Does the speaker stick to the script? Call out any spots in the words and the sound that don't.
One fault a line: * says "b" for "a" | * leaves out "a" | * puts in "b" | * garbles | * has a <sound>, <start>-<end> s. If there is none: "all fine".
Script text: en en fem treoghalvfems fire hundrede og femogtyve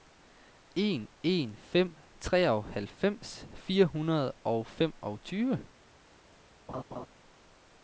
* has a laugh, 6.7-7.1 s